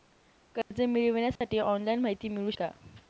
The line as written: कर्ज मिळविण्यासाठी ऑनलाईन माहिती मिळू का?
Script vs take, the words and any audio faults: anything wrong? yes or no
yes